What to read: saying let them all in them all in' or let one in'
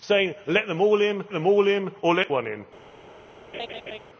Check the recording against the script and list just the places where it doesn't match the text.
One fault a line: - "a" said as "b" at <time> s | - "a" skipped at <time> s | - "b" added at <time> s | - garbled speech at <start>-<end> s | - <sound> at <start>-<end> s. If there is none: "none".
- laugh at 3.5-4.0 s